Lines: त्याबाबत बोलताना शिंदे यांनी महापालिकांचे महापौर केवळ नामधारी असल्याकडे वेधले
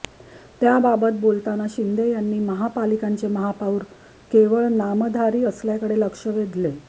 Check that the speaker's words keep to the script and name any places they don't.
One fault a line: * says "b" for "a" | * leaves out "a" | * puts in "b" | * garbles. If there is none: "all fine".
* puts in "लक्ष"